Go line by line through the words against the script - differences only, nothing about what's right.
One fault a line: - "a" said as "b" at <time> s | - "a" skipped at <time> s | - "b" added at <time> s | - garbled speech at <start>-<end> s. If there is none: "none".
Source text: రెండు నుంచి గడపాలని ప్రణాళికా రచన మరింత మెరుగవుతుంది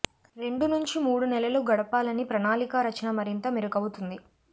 - "మూడు నెలలు" added at 1.0 s